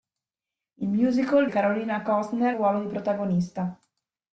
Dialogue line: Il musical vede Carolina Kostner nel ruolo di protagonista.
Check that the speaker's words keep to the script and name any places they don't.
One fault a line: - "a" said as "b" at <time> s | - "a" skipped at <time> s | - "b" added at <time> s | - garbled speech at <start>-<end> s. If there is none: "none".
- "vede" skipped at 1.5 s
- "nel" skipped at 2.6 s